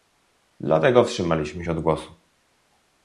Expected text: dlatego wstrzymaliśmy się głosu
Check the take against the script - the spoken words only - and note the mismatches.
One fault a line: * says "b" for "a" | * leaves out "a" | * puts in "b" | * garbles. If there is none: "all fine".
* puts in "od"